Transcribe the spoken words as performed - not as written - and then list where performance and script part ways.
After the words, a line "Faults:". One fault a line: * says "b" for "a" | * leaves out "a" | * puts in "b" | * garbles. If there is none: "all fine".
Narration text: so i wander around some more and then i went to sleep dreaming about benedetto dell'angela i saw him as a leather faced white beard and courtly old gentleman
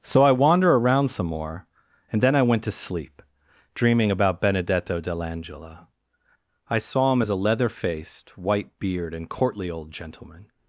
so i wander around some more and then i went to sleep dreaming about benedetto dell'angela i saw him as a leather faced white beard and courtly old gentleman
Faults:
all fine